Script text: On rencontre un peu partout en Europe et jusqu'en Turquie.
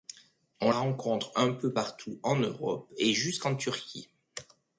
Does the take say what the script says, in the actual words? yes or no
yes